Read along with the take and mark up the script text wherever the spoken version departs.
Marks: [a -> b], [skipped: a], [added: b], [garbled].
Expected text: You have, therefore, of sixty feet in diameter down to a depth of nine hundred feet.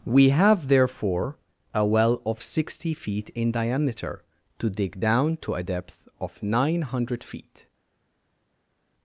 [You -> We] have, therefore, [added: a well] of sixty feet in diameter [added: to dig] down to a depth of nine hundred feet.